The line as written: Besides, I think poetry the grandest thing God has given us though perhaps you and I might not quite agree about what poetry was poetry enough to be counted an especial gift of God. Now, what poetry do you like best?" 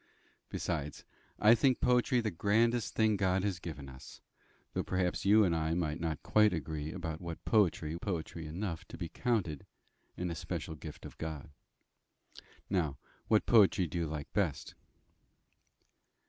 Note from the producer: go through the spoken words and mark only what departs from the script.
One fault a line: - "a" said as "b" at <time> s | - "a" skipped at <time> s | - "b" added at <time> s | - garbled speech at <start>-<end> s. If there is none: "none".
- "was" skipped at 8.0 s